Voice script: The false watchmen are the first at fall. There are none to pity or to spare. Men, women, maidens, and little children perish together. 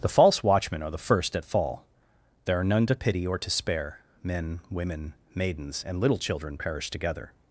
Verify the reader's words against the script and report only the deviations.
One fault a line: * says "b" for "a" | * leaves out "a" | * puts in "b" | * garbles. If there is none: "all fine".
all fine